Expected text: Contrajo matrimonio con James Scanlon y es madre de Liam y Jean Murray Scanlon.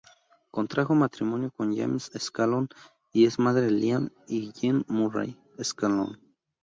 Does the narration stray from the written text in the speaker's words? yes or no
no